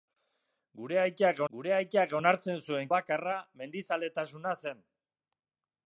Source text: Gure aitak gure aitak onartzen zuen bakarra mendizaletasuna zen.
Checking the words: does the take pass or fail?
pass